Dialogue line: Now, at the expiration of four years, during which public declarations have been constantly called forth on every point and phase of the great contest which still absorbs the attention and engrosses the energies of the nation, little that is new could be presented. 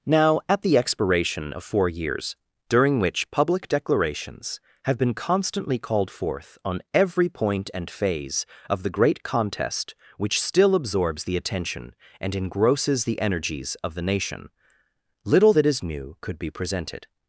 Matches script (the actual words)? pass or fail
pass